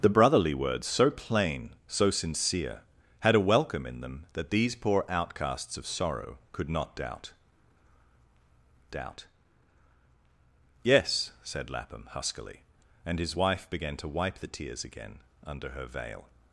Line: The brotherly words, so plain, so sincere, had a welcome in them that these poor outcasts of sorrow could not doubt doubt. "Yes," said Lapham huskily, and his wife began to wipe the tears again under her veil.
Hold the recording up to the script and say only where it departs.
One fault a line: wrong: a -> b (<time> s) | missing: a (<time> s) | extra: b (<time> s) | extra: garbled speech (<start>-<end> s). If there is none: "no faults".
no faults